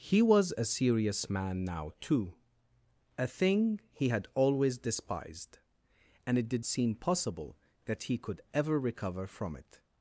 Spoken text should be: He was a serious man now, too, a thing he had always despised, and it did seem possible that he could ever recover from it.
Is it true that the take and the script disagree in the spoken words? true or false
false